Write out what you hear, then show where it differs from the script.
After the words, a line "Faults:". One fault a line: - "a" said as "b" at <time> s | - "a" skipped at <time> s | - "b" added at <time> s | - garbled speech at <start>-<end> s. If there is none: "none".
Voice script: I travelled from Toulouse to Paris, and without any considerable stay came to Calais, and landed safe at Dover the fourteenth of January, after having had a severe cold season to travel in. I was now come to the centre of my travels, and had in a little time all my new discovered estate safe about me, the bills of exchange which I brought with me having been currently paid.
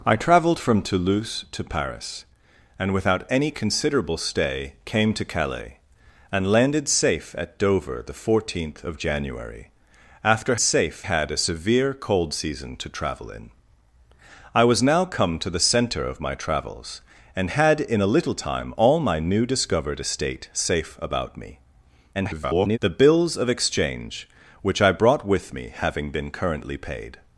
I travelled from Toulouse to Paris, and without any considerable stay came to Calais, and landed safe at Dover the fourteenth of January, after safe had a severe cold season to travel in. I was now come to the centre of my travels, and had in a little time all my new discovered estate safe about me, [garbled] the bills of exchange which I brought with me having been currently paid.
Faults:
- "having" said as "safe" at 10.6 s
- garbled speech at 22.1-22.8 s